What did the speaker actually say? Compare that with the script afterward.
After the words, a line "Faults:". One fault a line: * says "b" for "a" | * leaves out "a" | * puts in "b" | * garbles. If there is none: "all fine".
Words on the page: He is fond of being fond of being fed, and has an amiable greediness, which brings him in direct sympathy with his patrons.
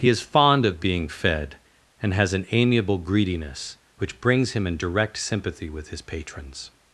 He is fond of being fed, and has an amiable greediness, which brings him in direct sympathy with his patrons.
Faults:
* leaves out "fond of being"